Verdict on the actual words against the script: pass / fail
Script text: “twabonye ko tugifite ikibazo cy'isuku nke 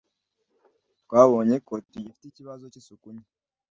pass